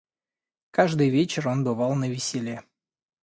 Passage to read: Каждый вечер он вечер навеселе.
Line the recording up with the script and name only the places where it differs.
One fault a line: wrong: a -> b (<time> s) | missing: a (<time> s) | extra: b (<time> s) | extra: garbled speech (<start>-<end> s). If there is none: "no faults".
wrong: вечер -> бывал (1.6 s)